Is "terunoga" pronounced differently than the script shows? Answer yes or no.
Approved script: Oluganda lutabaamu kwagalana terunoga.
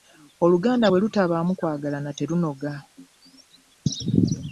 no